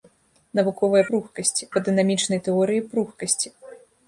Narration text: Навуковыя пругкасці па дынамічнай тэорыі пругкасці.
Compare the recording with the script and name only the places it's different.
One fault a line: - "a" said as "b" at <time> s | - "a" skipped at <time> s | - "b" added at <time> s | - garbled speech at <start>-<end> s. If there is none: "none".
none